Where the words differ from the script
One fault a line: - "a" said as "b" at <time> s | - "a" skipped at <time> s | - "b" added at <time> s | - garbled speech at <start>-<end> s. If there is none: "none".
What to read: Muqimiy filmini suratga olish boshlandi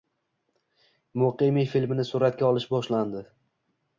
none